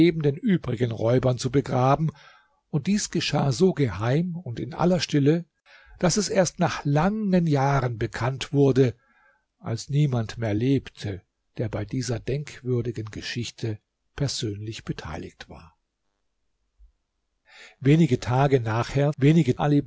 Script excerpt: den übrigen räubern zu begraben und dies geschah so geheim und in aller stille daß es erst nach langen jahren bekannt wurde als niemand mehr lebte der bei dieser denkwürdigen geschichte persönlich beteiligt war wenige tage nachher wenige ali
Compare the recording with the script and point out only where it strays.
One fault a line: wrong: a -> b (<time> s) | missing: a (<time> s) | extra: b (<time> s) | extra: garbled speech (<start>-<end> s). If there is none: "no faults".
no faults